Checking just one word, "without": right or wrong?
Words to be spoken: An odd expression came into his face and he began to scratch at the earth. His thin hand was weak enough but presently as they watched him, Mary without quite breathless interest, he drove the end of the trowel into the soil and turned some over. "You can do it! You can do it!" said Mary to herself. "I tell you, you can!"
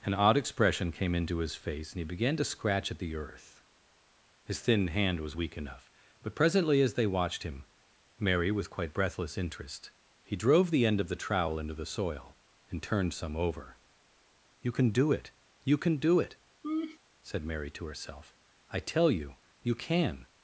wrong